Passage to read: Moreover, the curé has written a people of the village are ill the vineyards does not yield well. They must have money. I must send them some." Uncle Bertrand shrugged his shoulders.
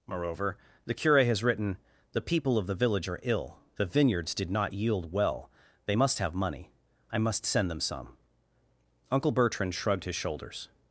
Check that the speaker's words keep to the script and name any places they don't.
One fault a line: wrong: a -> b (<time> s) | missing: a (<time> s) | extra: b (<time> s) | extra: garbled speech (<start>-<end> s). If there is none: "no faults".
wrong: a -> the (2.1 s)
wrong: does -> did (4.3 s)